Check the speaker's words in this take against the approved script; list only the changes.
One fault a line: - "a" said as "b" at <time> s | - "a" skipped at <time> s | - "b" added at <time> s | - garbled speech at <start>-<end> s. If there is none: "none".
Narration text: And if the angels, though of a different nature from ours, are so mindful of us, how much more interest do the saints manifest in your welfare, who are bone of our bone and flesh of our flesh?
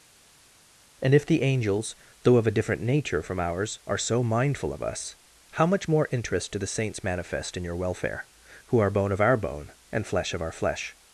none